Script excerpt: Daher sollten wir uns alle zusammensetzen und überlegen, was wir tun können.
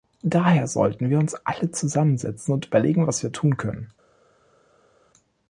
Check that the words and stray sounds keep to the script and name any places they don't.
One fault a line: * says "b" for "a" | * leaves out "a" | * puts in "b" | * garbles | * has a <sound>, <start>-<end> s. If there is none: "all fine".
all fine